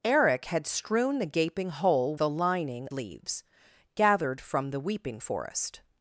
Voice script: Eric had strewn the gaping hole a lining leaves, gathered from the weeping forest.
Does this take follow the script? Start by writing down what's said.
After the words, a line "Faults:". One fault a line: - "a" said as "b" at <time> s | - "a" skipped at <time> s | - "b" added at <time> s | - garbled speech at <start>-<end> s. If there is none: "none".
Eric had strewn the gaping hole a lining leaves, gathered from the weeping forest.
Faults:
none